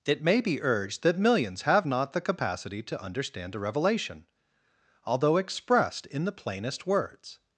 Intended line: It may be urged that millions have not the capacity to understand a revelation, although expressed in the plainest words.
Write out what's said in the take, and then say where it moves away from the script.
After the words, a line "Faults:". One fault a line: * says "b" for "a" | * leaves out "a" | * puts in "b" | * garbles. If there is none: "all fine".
It may be urged that millions have not the capacity to understand a revelation, although expressed in the plainest words.
Faults:
all fine